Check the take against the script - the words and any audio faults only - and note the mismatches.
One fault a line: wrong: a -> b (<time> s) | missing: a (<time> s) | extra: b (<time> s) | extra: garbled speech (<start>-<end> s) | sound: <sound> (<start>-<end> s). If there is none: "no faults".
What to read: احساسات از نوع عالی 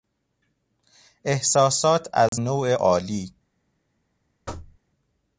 sound: dropout (2.3-2.3 s)
sound: thud (4.5-4.8 s)